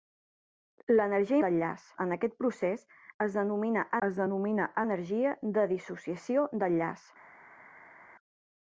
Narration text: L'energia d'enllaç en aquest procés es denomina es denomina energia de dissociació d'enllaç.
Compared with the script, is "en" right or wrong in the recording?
right